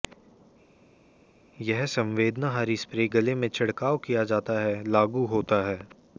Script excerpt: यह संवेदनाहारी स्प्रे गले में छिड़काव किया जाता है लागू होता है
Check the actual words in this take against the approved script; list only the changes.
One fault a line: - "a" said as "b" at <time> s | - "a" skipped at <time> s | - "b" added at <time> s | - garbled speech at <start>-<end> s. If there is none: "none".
none